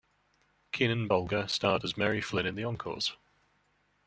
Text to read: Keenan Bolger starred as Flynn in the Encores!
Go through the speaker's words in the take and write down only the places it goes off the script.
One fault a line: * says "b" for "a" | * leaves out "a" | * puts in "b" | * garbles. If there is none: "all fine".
* puts in "Mary"